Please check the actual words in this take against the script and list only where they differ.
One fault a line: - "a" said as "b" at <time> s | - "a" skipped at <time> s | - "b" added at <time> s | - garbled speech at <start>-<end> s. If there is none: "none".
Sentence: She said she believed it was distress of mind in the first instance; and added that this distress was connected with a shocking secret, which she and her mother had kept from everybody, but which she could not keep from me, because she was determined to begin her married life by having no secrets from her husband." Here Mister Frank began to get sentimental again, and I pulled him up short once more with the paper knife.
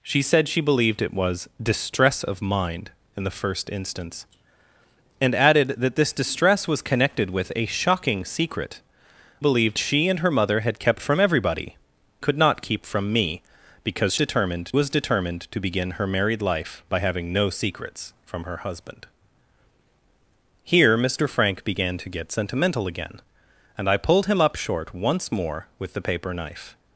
- "which" said as "believed" at 9.4 s
- "but which she" skipped at 11.8 s
- "she" said as "determined" at 14.1 s